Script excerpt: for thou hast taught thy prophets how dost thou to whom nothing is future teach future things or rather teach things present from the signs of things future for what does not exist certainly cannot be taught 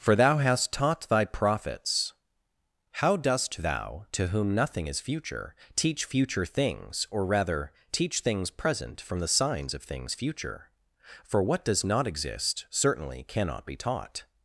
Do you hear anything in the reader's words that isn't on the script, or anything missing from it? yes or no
no